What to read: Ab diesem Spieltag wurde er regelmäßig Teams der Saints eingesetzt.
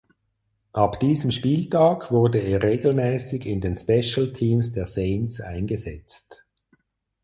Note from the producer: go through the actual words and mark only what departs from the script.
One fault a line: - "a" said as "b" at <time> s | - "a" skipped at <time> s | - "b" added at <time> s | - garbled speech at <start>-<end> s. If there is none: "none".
- "in den Special" added at 3.5 s